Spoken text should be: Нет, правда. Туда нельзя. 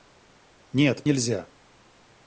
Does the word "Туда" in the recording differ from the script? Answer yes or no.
yes